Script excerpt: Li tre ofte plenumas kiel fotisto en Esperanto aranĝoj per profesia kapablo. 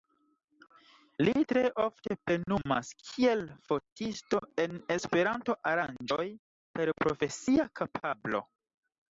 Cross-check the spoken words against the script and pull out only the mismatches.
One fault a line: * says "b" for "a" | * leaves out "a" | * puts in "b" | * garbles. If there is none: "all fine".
all fine